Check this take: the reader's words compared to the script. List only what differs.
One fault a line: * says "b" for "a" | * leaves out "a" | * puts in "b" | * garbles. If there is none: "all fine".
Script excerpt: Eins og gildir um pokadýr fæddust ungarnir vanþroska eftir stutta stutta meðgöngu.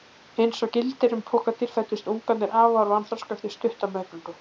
* puts in "afar"
* leaves out "stutta"